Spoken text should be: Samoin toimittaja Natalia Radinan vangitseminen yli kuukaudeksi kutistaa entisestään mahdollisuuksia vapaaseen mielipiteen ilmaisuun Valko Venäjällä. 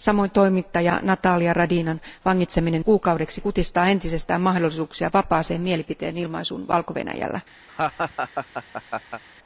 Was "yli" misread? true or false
true